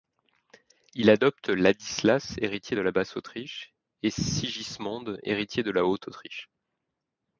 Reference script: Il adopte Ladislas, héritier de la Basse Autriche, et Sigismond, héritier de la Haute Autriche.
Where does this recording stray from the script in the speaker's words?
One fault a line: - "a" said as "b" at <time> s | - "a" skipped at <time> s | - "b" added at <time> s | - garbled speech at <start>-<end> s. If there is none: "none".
none